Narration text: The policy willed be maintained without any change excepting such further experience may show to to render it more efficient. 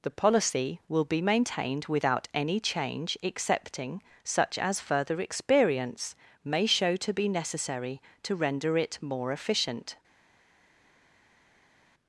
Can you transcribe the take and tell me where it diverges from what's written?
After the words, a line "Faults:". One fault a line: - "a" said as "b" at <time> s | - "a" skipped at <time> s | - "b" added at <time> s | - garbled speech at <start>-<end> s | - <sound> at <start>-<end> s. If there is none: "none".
The policy will be maintained without any change excepting such as further experience may show to be necessary to render it more efficient.
Faults:
- "willed" said as "will" at 0.9 s
- "as" added at 4.6 s
- "be necessary" added at 7.1 s